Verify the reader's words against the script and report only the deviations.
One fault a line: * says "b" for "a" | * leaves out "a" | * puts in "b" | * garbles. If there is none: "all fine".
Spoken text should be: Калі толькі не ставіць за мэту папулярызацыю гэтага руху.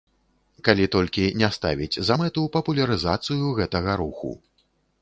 all fine